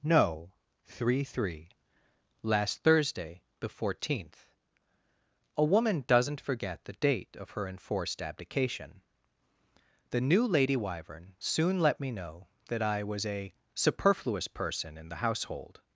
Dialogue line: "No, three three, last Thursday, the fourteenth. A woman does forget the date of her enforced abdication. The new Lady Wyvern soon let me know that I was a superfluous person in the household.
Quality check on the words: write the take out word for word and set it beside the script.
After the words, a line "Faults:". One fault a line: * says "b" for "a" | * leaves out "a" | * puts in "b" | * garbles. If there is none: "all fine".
"No, three three, last Thursday, the fourteenth. A woman doesn't forget the date of her enforced abdication. The new Lady Wyvern soon let me know that I was a superfluous person in the household.
Faults:
* says "doesn't" for "does"